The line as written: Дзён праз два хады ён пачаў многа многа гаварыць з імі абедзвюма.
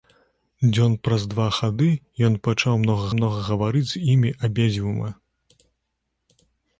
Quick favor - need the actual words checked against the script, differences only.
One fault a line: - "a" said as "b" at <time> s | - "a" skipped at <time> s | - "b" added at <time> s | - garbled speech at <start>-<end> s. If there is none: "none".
none